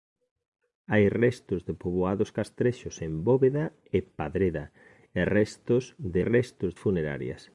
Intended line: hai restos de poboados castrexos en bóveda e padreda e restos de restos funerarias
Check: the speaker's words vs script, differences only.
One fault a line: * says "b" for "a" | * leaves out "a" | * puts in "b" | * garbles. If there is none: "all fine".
all fine